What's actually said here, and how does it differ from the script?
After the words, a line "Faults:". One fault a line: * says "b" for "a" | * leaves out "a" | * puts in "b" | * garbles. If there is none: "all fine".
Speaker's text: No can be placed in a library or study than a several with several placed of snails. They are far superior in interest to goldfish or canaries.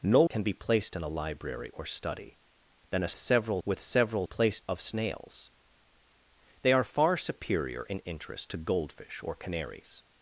No can be placed in a library or study than a several with several placed of snails. They are far superior in interest to goldfish or canaries.
Faults:
all fine